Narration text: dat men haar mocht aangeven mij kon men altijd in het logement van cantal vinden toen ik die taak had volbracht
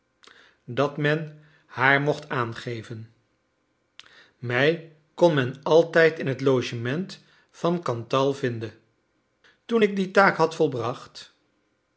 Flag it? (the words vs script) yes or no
no